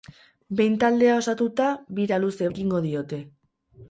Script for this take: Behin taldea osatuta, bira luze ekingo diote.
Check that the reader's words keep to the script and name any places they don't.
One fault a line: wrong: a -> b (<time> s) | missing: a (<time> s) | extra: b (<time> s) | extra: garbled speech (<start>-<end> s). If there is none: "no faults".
no faults